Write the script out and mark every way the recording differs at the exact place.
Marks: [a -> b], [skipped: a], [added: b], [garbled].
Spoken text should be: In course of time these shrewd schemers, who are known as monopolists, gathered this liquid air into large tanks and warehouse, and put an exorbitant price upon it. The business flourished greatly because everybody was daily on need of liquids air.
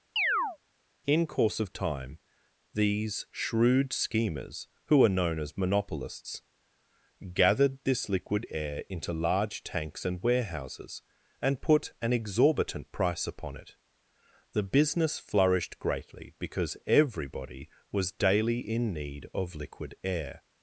In course of time these shrewd schemers, who are known as monopolists, gathered this liquid air into large tanks and [warehouse, -> warehouses] and put an exorbitant price upon it. The business flourished greatly because everybody was daily [on -> in] need of [liquids -> liquid] air.